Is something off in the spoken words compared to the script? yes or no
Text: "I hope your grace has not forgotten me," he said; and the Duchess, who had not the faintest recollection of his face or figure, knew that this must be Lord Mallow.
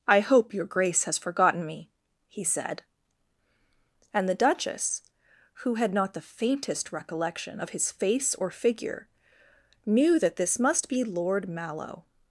yes